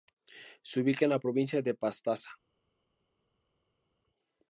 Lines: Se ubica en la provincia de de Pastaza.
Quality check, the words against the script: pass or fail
fail